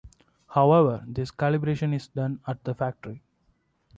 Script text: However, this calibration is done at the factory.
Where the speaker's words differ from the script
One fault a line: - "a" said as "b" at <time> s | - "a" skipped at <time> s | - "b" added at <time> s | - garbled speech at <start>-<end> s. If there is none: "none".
none